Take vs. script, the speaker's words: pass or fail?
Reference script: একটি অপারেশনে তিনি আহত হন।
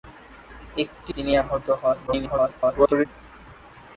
fail